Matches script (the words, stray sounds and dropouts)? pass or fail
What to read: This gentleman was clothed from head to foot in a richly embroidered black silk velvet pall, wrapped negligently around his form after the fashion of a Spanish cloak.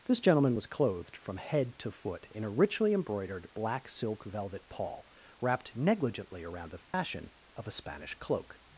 fail